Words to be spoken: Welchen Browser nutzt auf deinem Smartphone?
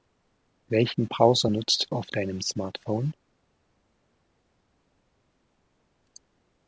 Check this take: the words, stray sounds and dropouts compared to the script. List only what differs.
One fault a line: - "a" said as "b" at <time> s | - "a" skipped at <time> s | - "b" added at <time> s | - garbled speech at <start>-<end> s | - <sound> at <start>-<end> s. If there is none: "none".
none